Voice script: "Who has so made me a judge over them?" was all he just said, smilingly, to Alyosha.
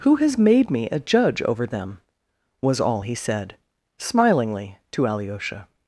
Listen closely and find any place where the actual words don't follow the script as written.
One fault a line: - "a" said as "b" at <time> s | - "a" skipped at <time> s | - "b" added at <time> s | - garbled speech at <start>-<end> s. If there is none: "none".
- "so" skipped at 0.4 s
- "just" skipped at 3.1 s